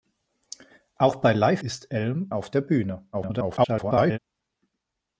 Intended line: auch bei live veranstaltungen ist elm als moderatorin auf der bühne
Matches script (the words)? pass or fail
fail